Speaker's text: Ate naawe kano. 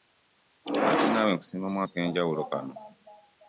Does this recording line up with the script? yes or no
no